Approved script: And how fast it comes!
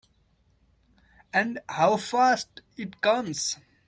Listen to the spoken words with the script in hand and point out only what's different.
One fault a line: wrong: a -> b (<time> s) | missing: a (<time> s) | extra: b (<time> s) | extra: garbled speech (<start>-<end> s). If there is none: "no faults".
no faults